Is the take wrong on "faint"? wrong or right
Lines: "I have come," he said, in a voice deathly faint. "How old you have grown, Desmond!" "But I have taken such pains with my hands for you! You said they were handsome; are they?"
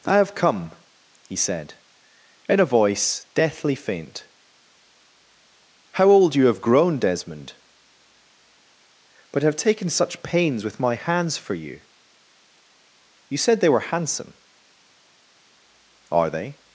right